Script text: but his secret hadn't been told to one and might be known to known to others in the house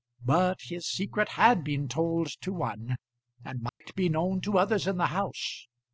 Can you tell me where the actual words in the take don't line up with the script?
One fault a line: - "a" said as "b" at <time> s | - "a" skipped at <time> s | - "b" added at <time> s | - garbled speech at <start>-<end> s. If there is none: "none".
- "hadn't" said as "had" at 1.3 s
- "known to" skipped at 4.6 s